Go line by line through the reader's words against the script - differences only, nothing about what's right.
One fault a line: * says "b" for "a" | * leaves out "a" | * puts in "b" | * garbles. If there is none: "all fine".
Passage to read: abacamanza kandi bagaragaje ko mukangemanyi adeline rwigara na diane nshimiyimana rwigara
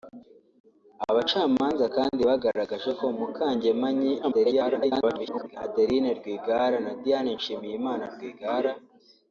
* garbles